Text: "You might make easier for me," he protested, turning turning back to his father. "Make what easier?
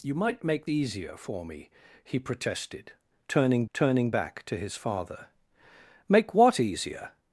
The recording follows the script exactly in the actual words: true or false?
true